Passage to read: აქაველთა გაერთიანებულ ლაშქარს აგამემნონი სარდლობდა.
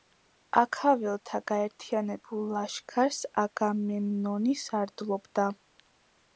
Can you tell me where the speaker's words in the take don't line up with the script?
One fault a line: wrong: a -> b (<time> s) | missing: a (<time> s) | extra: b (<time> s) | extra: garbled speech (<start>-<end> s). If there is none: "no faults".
no faults